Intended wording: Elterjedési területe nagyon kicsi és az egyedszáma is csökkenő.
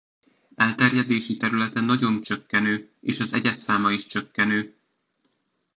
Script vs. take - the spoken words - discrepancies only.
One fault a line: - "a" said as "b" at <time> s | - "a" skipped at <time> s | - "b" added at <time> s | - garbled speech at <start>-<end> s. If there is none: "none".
- "kicsi" said as "csökkenő" at 2.2 s